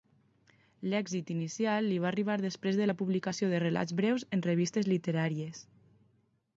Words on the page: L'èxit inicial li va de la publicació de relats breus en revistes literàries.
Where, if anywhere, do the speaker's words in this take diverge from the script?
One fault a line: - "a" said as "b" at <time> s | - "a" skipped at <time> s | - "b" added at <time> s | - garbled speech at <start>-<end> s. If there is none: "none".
- "arribar després" added at 2.1 s